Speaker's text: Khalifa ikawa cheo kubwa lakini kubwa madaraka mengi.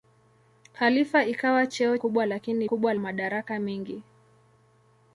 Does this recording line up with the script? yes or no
yes